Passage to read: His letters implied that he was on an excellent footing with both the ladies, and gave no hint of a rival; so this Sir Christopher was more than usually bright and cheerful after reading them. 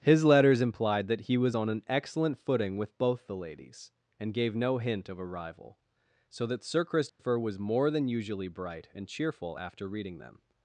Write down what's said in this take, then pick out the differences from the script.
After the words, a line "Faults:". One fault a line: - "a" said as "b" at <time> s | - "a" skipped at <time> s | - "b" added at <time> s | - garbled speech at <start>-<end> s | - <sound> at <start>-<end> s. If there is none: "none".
His letters implied that he was on an excellent footing with both the ladies, and gave no hint of a rival; so that Sir Christopher was more than usually bright and cheerful after reading them.
Faults:
- "this" said as "that" at 6.4 s
- dropout at 7.1-7.2 s